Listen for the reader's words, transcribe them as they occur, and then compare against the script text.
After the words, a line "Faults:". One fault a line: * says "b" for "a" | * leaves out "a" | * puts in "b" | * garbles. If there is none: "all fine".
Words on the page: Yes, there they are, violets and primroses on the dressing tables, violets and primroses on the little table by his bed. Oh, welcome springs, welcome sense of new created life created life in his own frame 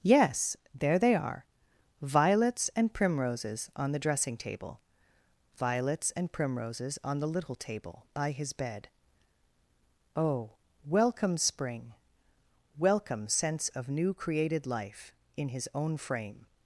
Yes, there they are, violets and primroses on the dressing table, violets and primroses on the little table by his bed. Oh, welcome spring, welcome sense of new created life in his own frame
Faults:
* says "table" for "tables"
* says "spring" for "springs"
* leaves out "created life"